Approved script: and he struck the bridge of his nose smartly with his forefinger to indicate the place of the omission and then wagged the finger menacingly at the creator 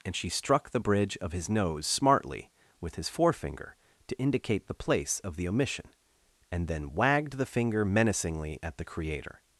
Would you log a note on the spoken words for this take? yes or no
yes